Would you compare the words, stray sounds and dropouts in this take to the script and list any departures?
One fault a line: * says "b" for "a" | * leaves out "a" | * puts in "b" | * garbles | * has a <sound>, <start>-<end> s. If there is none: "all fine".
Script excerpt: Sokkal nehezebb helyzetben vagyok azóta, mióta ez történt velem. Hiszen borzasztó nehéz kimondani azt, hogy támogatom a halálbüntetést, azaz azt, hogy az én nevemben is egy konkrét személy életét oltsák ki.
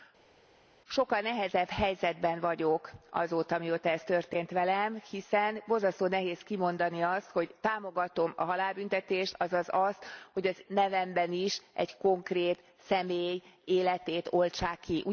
* leaves out "én"